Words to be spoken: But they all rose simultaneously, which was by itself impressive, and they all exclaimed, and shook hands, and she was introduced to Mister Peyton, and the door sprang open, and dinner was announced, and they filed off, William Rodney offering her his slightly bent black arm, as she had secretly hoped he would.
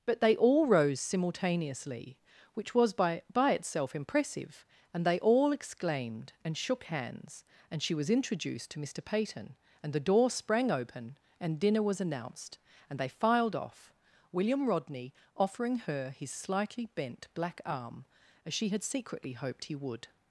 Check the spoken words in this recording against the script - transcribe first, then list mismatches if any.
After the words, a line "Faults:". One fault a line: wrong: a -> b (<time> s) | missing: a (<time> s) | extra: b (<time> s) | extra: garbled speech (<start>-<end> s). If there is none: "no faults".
But they all rose simultaneously, which was by by itself impressive, and they all exclaimed, and shook hands, and she was introduced to Mister Peyton, and the door sprang open, and dinner was announced, and they filed off, William Rodney offering her his slightly bent black arm, as she had secretly hoped he would.
Faults:
extra: by (3.3 s)